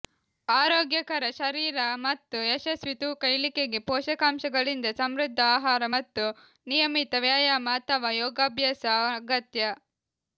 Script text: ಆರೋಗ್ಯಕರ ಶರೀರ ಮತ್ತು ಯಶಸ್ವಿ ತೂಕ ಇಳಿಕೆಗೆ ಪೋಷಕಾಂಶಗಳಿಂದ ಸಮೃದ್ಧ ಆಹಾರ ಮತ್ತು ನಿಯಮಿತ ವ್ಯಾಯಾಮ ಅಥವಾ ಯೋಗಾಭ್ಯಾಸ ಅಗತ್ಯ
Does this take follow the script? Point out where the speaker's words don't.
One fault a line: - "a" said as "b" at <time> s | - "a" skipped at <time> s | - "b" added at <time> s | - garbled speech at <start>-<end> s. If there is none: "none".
none